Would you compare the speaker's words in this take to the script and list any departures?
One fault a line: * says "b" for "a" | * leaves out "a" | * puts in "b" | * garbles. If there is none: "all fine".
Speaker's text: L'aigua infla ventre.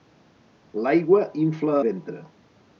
all fine